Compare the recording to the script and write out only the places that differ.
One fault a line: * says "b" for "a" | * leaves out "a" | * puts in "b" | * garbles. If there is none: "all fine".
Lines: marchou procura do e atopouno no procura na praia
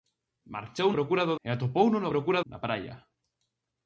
all fine